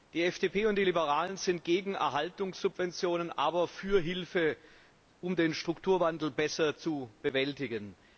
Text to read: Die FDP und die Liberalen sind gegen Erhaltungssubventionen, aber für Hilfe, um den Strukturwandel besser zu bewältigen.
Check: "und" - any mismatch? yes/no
no